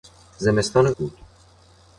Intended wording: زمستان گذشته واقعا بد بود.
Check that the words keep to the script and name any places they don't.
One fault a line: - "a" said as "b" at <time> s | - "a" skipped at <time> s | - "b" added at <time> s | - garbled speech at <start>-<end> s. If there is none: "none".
- "گذشته واقعا بد" skipped at 0.9 s